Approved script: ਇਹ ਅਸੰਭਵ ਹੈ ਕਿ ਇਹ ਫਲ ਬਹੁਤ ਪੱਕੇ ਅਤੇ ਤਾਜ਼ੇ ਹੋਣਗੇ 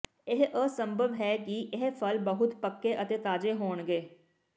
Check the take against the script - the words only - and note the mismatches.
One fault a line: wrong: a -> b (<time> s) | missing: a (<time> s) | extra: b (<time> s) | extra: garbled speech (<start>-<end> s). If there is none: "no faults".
no faults